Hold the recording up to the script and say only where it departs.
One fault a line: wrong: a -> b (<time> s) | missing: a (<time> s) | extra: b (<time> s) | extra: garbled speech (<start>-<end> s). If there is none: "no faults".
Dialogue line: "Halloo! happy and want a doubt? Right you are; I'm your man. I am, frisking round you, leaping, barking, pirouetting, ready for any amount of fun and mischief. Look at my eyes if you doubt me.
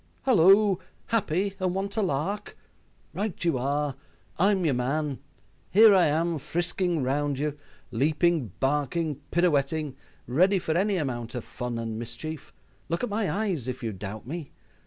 wrong: doubt -> lark (2.0 s)
extra: Here (5.7 s)